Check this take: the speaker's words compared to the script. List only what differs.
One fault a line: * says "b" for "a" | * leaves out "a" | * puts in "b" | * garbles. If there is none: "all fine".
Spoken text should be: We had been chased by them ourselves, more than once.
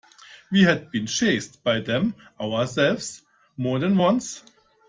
all fine